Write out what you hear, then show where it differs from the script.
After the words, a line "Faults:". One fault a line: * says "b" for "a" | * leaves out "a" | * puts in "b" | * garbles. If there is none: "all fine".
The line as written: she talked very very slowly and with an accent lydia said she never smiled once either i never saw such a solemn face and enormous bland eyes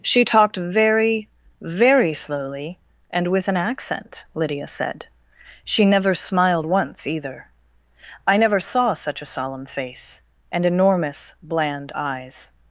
she talked very very slowly and with an accent lydia said she never smiled once either i never saw such a solemn face and enormous bland eyes
Faults:
all fine